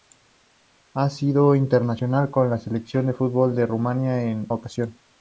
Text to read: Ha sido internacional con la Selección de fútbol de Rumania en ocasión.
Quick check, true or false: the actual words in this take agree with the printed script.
true